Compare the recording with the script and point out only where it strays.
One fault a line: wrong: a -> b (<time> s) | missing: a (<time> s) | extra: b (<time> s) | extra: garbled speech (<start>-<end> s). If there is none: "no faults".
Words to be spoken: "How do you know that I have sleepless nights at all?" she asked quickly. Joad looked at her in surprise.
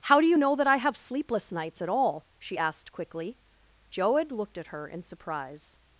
no faults